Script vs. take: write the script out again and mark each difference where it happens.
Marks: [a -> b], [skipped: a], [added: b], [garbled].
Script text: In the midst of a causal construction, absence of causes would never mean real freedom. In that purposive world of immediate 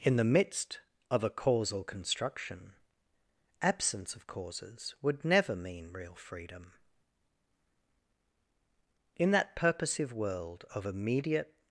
In the midst of a causal construction, absence of causes would never mean real freedom. In that purposive world of immediate